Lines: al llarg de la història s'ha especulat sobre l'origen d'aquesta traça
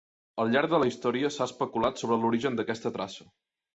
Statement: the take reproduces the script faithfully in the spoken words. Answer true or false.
true